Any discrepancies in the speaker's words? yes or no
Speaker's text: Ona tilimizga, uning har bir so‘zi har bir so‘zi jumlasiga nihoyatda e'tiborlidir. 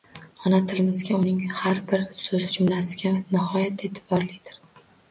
yes